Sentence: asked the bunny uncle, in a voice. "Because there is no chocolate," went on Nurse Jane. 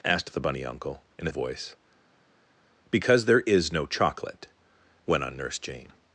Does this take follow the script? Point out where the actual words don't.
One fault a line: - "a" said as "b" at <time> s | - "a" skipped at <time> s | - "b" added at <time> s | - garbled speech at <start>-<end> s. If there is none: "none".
none